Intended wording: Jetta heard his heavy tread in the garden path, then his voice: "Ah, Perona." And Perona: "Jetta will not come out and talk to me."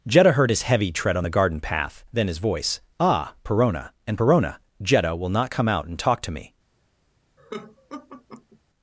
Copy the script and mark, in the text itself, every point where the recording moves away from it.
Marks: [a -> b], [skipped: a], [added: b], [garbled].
Jetta heard his heavy tread [in -> on] the garden path, then his voice: "Ah, Perona." And Perona: "Jetta will not come out and talk to me."